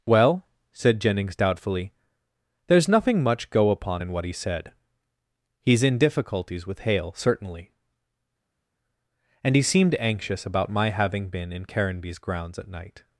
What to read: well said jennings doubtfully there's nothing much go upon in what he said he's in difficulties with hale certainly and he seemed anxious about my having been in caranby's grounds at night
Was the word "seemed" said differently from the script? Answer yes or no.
no